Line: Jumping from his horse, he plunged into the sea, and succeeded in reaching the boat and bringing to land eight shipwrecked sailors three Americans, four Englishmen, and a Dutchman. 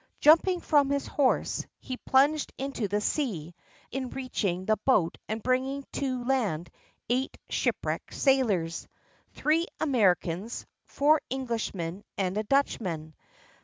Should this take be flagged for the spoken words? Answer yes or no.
yes